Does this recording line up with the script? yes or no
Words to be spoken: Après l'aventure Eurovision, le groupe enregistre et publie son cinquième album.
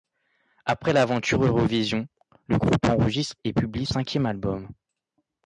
no